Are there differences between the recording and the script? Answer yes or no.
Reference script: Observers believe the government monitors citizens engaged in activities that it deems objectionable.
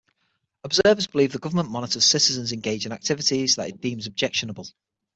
no